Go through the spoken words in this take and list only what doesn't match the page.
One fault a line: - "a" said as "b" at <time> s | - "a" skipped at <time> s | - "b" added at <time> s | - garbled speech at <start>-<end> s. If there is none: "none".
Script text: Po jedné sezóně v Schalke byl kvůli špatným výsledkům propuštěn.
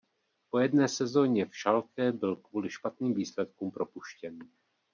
none